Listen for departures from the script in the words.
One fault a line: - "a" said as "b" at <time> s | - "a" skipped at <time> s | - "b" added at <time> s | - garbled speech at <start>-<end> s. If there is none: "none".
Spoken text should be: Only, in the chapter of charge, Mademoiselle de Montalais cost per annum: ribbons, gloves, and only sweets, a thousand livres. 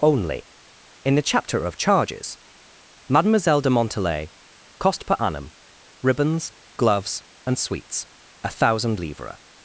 - "charge" said as "charges" at 1.8 s
- "only" skipped at 7.6 s